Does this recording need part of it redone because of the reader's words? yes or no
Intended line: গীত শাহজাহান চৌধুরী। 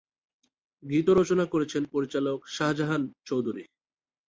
yes